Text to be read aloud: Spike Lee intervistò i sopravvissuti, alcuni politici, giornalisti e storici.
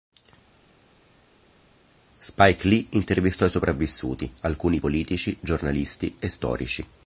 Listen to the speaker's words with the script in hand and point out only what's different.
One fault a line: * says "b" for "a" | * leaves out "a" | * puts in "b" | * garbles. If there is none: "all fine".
all fine